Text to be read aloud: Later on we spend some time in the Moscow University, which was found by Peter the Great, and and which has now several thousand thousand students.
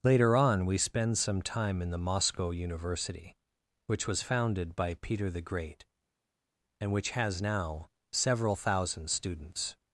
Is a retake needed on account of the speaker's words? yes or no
yes